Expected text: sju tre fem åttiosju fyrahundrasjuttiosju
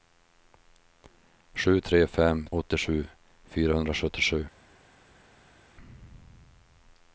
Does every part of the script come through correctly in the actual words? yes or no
yes